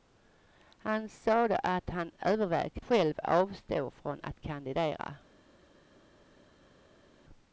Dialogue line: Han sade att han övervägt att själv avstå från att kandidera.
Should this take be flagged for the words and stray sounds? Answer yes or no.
yes